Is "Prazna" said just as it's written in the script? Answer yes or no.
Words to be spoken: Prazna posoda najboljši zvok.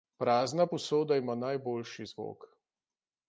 yes